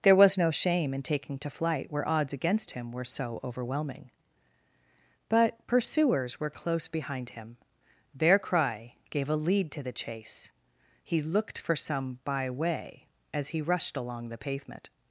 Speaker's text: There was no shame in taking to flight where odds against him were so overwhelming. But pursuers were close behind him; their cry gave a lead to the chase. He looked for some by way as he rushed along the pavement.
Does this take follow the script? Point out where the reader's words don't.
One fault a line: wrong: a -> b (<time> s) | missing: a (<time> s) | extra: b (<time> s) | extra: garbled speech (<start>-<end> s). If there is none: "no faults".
no faults